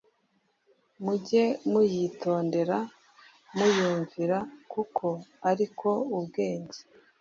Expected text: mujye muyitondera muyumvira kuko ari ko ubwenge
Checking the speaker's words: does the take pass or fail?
pass